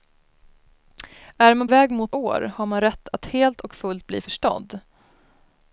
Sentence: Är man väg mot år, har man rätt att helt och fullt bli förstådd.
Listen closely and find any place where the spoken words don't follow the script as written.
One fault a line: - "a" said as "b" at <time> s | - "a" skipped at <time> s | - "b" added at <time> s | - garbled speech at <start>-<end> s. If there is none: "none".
none